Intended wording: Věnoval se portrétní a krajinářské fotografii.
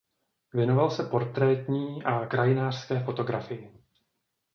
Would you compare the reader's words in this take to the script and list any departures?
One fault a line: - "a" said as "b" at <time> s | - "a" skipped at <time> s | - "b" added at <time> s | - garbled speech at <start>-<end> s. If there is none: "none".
none